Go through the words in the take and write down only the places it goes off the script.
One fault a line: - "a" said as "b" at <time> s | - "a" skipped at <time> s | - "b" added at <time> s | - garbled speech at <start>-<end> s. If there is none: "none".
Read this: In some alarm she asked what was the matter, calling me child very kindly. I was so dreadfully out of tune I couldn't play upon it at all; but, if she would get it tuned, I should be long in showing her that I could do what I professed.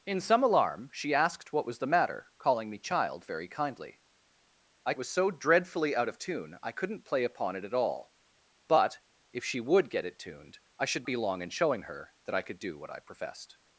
none